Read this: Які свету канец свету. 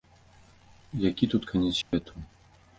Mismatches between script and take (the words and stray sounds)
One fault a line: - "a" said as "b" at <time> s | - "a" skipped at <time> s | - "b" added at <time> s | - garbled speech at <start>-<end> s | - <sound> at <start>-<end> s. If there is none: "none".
- "свету" said as "тут" at 1.3 s
- dropout at 1.8-1.9 s